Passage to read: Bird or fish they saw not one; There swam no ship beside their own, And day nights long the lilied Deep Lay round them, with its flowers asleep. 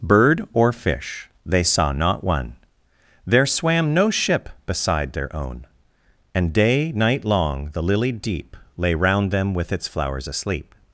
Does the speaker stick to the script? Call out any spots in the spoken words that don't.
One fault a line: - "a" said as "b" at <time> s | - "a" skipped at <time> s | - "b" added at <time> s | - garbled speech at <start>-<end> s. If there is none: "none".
- "nights" said as "night" at 6.9 s